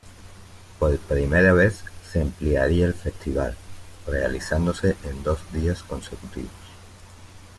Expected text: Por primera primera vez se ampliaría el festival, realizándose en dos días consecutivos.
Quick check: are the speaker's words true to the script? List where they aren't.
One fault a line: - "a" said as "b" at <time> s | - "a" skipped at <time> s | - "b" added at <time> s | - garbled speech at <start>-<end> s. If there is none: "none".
- "primera" skipped at 1.5 s